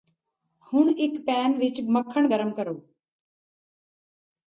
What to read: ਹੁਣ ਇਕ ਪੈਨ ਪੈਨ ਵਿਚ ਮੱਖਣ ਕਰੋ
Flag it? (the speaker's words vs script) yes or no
yes